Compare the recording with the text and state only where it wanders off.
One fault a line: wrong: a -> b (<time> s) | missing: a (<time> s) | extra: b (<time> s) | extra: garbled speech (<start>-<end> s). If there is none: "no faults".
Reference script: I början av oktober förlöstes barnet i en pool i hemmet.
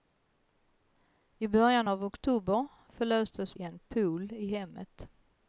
missing: barnet (3.6 s)